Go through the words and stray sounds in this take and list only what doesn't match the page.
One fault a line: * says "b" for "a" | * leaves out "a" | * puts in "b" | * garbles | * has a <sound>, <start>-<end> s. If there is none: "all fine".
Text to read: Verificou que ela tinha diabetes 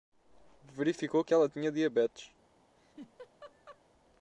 * has a laugh, 2.8-3.8 s